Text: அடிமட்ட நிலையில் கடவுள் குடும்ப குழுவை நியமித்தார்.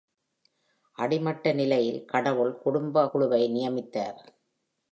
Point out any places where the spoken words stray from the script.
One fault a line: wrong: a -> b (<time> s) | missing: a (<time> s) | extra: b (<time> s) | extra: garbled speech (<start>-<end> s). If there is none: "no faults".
no faults